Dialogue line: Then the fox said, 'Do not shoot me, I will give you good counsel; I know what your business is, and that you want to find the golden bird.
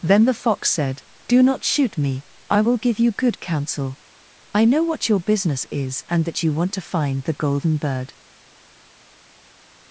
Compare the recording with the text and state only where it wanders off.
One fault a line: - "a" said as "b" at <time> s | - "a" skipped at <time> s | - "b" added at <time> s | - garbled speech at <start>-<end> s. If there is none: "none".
none